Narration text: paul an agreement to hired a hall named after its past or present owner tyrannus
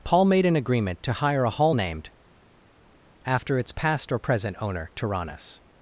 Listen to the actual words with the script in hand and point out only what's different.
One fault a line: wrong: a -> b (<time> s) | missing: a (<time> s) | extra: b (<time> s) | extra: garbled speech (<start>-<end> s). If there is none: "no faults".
extra: made (0.2 s)
wrong: hired -> hire (1.1 s)